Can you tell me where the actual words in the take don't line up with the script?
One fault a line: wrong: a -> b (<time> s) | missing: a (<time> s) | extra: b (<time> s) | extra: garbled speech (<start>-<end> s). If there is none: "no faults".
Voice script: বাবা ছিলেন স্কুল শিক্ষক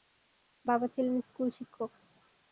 no faults